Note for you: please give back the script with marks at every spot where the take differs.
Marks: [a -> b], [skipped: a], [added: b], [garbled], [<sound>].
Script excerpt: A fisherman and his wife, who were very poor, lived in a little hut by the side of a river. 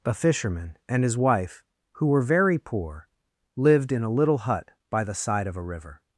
A fisherman and his wife, who were very poor, lived in a little hut by the side of a river.